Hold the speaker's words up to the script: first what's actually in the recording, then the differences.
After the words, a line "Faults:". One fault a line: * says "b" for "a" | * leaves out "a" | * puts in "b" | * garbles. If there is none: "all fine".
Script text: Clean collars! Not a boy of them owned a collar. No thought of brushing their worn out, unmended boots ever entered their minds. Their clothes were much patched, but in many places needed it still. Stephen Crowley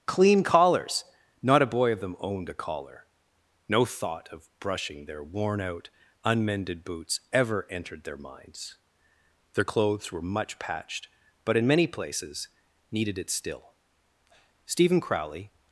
Clean collars! Not a boy of them owned a collar. No thought of brushing their worn out, unmended boots ever entered their minds. Their clothes were much patched, but in many places needed it still. Stephen Crowley
Faults:
all fine